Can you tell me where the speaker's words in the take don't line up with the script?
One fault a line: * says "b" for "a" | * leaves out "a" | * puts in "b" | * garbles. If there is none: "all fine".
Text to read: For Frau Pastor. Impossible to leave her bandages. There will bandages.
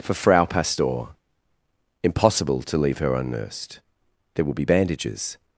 * says "unnursed" for "bandages"
* puts in "be"